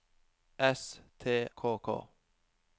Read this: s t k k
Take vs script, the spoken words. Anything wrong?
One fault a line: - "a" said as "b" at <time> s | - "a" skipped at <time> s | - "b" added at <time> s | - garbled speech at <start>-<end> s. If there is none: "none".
none